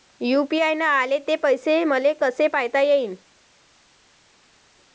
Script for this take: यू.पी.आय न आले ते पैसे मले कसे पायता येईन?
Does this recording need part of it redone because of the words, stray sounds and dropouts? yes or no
no